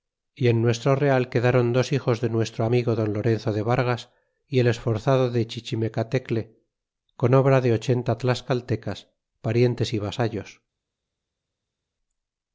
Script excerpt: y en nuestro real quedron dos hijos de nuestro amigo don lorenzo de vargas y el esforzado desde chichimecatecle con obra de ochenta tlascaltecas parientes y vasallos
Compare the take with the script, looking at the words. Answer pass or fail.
fail